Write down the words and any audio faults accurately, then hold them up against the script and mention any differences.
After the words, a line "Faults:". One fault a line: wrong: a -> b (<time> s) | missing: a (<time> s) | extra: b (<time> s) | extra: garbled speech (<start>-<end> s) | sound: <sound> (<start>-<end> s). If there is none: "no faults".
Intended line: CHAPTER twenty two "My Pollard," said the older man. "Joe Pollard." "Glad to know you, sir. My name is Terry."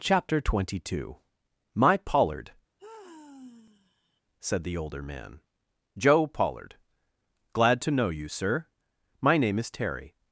CHAPTER twenty two "My Pollard," said the older man. "Joe Pollard." "Glad to know you, sir. My name is Terry."
Faults:
sound: sigh (2.8-4.2 s)